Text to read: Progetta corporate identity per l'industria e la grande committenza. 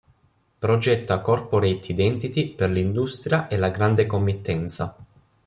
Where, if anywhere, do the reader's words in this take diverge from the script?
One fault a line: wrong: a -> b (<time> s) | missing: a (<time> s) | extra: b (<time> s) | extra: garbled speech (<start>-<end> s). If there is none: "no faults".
no faults